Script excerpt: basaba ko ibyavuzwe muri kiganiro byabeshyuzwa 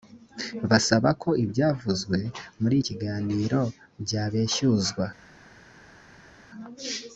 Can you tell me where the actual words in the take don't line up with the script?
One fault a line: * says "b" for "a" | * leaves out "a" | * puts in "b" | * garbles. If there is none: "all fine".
all fine